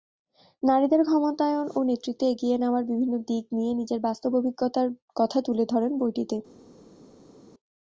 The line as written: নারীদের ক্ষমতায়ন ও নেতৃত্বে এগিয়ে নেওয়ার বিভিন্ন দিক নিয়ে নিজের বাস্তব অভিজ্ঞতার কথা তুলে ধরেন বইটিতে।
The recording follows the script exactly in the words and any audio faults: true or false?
true